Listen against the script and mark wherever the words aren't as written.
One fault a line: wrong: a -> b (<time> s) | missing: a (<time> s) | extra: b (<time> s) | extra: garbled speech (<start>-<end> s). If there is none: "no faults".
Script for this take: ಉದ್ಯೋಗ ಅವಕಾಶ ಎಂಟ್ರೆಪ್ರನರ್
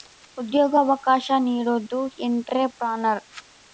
extra: ನೀಡೋದು (1.4 s)